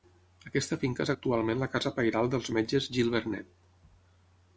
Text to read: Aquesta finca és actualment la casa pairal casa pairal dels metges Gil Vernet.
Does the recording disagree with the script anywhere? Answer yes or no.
yes